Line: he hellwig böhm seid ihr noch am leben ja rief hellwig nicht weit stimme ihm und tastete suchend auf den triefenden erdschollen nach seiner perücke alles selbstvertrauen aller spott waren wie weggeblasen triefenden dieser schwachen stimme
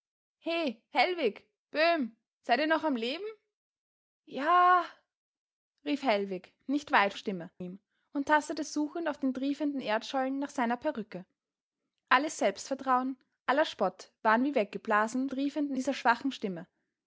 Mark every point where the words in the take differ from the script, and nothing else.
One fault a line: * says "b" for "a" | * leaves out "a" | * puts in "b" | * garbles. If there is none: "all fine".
all fine